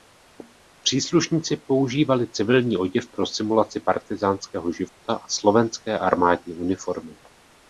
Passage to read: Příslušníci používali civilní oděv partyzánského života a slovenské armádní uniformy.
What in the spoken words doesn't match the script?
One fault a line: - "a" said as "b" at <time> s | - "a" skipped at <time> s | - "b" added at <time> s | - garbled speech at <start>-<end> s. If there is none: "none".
- "pro simulaci" added at 3.1 s